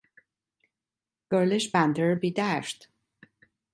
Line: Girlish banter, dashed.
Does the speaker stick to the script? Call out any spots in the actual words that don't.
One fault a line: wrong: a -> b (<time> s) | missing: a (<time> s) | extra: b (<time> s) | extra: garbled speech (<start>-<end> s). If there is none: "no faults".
extra: be (2.1 s)